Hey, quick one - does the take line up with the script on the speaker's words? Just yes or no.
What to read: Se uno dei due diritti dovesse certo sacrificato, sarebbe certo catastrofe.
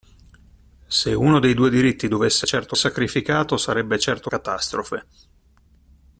yes